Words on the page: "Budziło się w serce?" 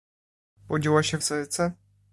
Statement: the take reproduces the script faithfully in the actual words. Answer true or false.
true